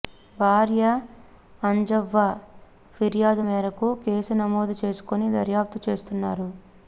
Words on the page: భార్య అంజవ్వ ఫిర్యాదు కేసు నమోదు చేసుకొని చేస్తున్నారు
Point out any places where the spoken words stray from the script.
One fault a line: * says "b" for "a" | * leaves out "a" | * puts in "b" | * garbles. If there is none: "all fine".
* puts in "మేరకు"
* puts in "దర్యాప్తు"